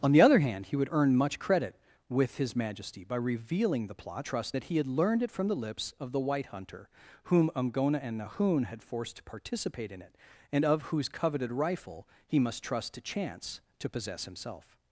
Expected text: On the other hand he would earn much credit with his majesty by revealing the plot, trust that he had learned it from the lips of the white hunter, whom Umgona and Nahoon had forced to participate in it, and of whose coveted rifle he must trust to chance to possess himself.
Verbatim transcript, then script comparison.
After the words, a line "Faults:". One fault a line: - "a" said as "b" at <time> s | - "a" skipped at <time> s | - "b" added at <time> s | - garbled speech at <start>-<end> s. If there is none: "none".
On the other hand he would earn much credit with his majesty by revealing the plot, trust that he had learned it from the lips of the white hunter, whom Umgona and Nahoon had forced to participate in it, and of whose coveted rifle he must trust to chance to possess himself.
Faults:
none